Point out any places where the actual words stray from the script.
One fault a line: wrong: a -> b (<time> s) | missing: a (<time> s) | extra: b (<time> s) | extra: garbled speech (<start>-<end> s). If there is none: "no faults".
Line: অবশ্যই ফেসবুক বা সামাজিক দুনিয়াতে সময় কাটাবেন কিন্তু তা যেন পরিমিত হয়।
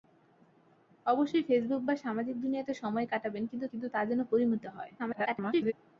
extra: কিন্তু (3.7 s)
extra: garbled speech (5.0-5.7 s)